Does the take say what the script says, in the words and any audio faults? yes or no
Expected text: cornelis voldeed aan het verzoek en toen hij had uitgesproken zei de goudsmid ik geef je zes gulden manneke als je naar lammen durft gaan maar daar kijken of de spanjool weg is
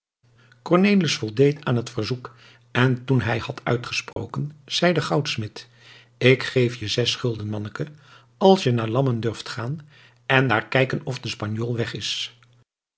no